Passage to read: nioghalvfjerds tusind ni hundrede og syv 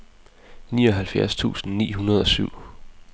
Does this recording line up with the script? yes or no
yes